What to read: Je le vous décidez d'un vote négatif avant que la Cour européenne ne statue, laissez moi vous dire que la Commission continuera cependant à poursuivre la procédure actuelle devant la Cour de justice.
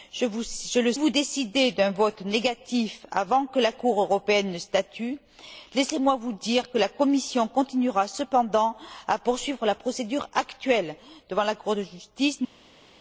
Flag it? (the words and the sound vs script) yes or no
no